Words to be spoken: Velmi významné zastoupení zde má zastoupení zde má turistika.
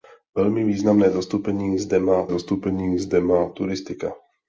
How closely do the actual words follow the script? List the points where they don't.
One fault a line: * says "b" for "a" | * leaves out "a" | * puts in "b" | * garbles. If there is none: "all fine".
all fine